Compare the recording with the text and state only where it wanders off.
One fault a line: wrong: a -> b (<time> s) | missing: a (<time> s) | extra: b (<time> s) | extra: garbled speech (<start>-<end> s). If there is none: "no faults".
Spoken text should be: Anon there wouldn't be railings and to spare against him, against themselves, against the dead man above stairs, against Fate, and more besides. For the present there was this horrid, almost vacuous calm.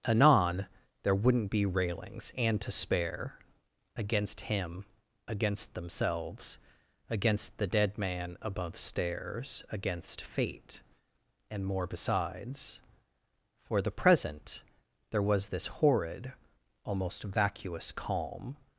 no faults